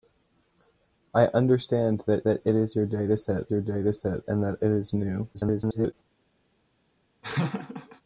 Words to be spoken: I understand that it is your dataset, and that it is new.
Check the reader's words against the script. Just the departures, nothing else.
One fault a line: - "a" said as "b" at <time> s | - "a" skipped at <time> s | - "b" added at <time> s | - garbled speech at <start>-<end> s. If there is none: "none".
- "that" added at 2.2 s
- "your dataset" added at 3.5 s
- garbled speech at 5.3-5.9 s